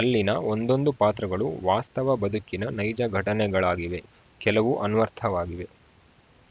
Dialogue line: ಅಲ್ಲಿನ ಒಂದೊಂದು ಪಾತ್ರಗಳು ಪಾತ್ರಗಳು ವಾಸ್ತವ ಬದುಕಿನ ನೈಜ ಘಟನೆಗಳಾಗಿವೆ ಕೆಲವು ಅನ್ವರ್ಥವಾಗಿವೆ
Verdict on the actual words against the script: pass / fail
fail